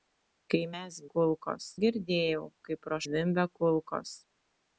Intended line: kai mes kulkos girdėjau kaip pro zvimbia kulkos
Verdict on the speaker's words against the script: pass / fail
pass